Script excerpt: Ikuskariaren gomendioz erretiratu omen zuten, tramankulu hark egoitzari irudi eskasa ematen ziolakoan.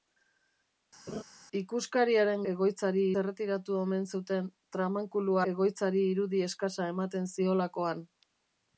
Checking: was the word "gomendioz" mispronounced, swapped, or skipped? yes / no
yes